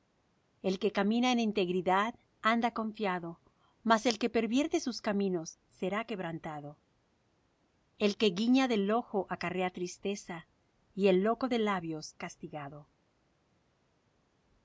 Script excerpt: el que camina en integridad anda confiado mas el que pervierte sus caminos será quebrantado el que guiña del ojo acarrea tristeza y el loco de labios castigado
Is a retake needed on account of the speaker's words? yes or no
no